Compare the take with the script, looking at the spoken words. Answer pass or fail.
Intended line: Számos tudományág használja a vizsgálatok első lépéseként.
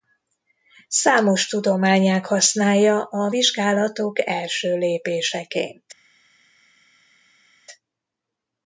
pass